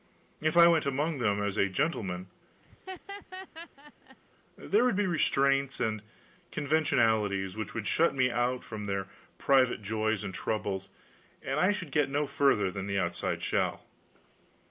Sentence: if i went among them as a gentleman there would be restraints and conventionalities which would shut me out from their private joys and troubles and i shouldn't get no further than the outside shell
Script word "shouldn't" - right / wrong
wrong